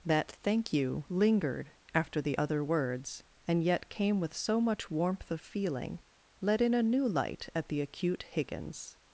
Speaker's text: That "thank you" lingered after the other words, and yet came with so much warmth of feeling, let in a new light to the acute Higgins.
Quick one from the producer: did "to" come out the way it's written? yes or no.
no